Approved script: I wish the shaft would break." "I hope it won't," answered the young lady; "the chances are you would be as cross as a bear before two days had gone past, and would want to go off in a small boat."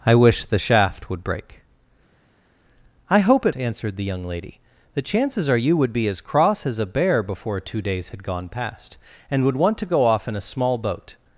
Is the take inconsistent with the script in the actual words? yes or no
yes